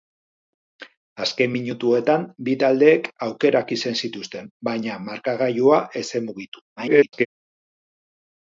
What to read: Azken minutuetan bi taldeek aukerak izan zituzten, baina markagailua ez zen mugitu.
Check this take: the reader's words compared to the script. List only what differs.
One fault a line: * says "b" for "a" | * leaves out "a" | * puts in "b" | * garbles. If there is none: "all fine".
* garbles